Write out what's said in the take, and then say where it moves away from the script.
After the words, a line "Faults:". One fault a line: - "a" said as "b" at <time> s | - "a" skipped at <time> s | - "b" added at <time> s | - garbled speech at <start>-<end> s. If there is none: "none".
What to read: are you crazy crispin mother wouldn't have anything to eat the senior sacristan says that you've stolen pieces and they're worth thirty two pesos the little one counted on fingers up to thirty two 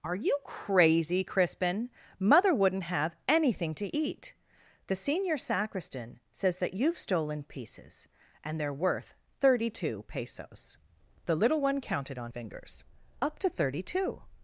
are you crazy crispin mother wouldn't have anything to eat the senior sacristan says that you've stolen pieces and they're worth thirty two pesos the little one counted on fingers up to thirty two
Faults:
none